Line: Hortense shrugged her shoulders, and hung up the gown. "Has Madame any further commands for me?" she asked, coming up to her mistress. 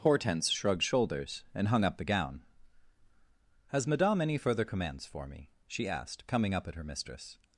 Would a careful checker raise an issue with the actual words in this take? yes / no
yes